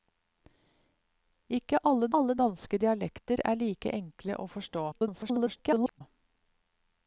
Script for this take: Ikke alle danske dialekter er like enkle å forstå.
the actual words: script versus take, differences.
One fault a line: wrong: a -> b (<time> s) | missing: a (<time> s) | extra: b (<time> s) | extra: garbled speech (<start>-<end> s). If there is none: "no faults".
extra: alle (2.2 s)
extra: garbled speech (4.9-6.0 s)